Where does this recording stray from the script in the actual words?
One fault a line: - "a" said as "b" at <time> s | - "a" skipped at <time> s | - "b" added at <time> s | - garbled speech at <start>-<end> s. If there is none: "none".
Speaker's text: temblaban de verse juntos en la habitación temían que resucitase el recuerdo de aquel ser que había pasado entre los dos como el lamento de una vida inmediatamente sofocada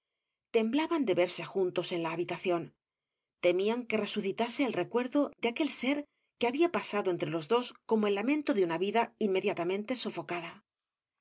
none